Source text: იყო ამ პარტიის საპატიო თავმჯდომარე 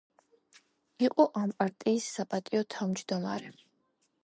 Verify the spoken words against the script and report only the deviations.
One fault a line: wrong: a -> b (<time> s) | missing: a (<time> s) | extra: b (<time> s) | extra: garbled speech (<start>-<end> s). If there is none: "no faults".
no faults